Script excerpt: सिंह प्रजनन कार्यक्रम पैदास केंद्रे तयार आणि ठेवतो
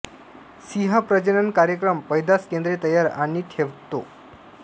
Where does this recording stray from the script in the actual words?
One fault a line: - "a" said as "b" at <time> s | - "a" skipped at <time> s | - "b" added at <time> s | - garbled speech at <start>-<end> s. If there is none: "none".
none